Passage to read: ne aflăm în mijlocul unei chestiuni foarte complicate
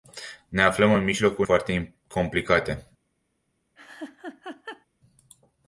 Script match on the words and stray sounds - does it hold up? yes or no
no